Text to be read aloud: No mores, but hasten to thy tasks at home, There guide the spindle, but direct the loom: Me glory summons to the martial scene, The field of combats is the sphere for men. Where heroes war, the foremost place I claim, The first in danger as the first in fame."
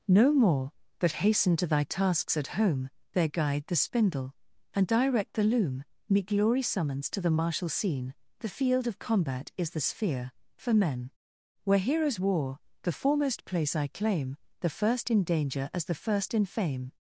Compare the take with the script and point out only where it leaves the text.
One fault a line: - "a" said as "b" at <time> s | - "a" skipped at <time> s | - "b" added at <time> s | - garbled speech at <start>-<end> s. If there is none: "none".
- "mores" said as "more" at 0.3 s
- "but" said as "and" at 4.7 s
- "combats" said as "combat" at 9.0 s